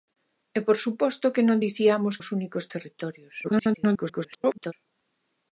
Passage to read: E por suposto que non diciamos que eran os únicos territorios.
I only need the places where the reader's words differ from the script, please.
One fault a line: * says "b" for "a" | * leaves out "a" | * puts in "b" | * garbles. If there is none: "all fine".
* leaves out "que eran"
* garbles